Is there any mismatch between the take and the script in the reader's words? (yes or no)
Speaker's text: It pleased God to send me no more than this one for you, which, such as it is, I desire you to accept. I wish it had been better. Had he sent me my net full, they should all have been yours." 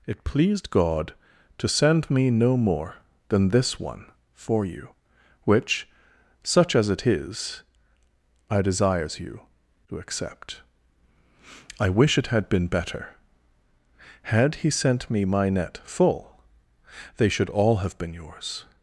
yes